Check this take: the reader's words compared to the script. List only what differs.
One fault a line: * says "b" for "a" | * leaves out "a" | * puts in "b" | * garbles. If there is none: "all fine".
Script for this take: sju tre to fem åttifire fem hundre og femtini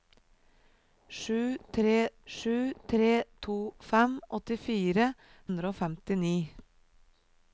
* puts in "sju tre"
* leaves out "fem"